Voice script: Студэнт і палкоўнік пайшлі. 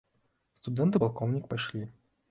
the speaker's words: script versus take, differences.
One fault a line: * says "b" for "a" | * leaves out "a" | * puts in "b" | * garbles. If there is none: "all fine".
all fine